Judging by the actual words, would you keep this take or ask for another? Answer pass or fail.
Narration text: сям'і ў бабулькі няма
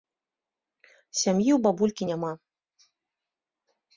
pass